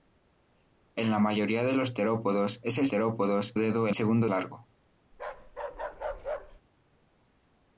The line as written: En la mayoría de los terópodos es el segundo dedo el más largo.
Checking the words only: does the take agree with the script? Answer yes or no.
no